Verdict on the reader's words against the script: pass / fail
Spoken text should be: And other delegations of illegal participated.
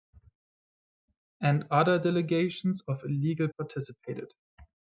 pass